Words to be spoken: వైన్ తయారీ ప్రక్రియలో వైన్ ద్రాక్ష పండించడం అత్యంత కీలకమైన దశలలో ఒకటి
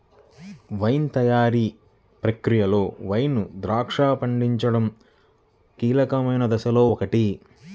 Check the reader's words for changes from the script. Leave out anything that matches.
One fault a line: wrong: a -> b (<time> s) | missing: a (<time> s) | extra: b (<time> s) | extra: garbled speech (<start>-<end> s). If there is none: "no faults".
missing: అత్యంత (4.9 s)